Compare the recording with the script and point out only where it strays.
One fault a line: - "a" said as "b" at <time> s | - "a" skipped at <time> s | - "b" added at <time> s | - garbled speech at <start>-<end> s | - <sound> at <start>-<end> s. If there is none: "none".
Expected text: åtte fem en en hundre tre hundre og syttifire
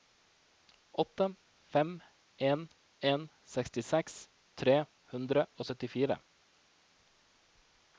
- "hundre" said as "sekstiseks" at 3.5 s